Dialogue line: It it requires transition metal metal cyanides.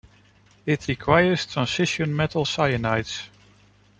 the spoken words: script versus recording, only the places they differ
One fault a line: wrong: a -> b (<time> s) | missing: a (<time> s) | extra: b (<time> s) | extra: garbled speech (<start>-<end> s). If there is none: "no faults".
missing: it (0.9 s)
missing: metal (2.4 s)